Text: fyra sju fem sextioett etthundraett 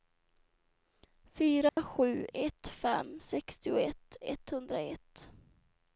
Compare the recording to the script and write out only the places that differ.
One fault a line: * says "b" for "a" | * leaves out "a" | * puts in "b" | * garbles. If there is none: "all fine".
* puts in "ett"